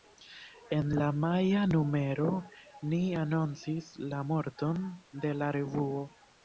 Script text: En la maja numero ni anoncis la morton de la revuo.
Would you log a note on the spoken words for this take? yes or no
no